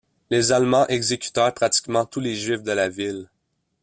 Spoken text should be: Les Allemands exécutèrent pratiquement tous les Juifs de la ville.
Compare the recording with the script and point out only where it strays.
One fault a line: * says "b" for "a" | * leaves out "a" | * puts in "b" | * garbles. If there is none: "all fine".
all fine